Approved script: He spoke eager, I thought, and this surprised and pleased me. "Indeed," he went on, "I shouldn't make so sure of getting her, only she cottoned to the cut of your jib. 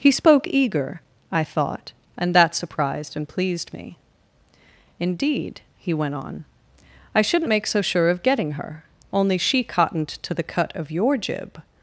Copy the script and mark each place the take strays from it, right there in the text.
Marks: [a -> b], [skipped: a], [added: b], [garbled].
He spoke eager, I thought, and [this -> that] surprised and pleased me. "Indeed," he went on, "I shouldn't make so sure of getting her, only she cottoned to the cut of your jib.